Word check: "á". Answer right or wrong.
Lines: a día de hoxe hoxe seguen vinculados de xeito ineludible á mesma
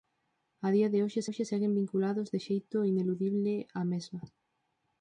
right